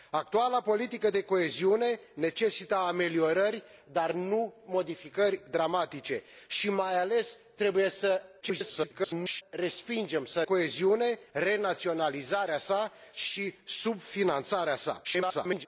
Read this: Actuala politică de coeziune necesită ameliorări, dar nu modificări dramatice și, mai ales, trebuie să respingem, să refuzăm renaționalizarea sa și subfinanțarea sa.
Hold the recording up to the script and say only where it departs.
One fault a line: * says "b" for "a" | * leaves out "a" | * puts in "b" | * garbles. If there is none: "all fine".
* garbles
* says "coeziune" for "refuzăm"
* garbles